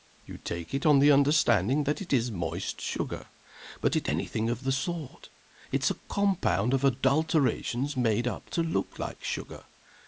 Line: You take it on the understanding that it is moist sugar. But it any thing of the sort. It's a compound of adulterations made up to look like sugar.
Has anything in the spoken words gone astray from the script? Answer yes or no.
no